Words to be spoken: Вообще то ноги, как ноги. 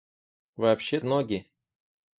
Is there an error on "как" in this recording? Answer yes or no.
yes